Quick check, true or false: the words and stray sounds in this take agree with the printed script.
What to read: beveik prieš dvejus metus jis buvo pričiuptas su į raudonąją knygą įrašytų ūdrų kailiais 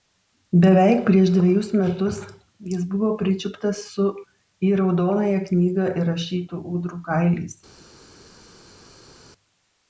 true